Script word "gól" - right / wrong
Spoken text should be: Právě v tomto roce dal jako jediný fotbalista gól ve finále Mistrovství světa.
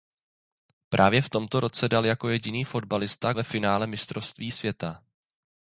wrong